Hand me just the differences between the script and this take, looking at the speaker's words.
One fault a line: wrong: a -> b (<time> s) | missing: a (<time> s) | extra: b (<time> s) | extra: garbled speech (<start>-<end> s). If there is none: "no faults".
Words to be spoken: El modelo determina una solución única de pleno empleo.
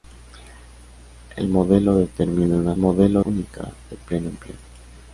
wrong: solución -> modelo (2.8 s)